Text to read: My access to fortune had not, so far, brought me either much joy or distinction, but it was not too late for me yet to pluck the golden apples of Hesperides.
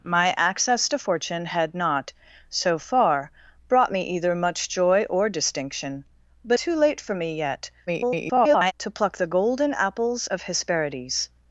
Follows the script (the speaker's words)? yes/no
no